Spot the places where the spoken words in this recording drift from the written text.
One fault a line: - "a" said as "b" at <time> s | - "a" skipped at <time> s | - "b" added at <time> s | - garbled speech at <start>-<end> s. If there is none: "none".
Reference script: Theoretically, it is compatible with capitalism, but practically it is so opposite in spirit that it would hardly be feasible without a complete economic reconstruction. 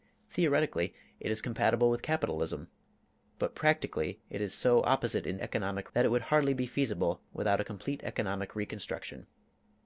- "spirit" said as "economic" at 5.4 s